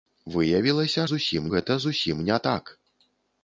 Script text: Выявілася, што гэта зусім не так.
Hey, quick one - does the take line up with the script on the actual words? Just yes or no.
no